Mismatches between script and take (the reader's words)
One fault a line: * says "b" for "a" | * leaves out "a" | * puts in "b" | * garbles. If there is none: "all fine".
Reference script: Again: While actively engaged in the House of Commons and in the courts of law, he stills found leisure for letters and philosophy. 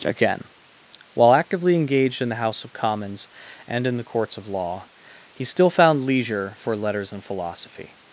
* says "still" for "stills"